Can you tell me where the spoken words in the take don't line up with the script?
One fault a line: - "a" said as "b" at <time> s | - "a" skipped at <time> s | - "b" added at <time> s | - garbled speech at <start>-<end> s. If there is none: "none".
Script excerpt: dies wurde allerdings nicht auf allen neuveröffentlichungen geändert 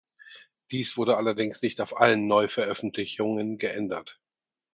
none